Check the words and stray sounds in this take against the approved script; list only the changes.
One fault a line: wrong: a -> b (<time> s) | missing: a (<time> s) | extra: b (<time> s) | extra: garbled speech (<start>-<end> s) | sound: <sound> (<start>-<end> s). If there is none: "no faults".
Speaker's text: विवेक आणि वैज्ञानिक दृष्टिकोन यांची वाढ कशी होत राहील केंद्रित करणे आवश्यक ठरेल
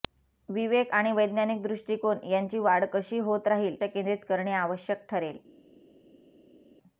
no faults